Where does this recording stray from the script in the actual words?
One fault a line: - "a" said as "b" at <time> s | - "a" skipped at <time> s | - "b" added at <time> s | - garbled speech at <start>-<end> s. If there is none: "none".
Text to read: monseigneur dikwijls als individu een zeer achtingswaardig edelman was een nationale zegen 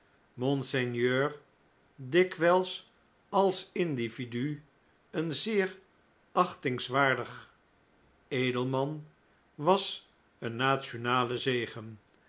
none